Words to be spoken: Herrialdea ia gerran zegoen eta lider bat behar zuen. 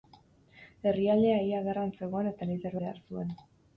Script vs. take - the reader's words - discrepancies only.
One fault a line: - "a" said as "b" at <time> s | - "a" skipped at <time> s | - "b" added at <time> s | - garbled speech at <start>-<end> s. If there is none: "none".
- "bat" skipped at 2.8 s